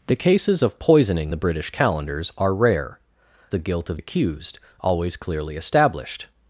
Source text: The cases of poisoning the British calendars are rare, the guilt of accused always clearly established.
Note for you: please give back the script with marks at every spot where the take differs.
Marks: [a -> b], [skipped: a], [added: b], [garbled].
The cases of poisoning the British calendars are rare, the guilt of accused always clearly established.